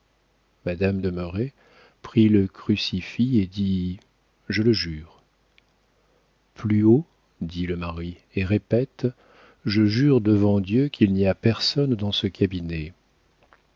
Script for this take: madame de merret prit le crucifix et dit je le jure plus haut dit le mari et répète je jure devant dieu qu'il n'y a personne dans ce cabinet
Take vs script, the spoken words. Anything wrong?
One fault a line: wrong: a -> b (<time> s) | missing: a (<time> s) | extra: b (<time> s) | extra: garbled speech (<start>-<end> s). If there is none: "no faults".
no faults